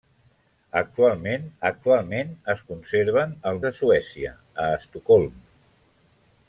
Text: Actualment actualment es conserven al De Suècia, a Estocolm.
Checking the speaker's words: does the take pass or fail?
pass